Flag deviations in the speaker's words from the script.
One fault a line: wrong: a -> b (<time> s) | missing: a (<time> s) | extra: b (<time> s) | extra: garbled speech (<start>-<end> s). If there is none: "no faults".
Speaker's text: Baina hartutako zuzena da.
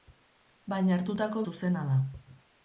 no faults